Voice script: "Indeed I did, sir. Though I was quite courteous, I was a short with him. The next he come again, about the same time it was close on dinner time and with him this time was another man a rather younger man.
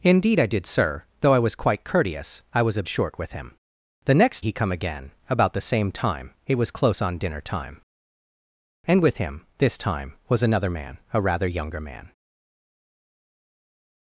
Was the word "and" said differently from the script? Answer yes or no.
no